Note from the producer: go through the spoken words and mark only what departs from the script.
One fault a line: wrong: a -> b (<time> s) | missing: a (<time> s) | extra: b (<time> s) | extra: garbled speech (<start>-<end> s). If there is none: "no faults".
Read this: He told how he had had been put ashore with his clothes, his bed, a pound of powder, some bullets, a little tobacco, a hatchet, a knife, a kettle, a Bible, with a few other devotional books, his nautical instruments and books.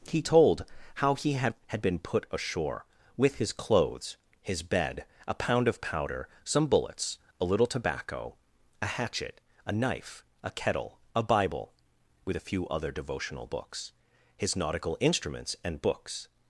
no faults